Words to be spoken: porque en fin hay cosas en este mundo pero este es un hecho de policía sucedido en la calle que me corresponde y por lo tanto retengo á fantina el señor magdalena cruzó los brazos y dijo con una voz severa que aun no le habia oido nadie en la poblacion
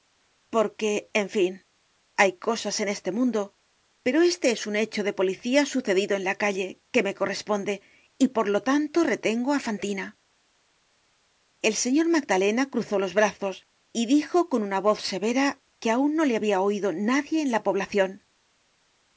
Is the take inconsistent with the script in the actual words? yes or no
no